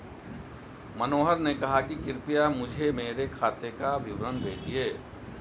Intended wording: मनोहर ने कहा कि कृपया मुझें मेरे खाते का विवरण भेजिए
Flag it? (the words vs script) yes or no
no